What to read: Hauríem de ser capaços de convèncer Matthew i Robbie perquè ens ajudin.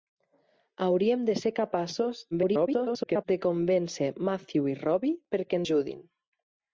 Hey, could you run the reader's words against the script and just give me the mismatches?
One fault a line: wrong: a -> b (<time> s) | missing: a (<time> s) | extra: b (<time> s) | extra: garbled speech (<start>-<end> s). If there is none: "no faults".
extra: garbled speech (2.3-3.2 s)
missing: ens (5.6 s)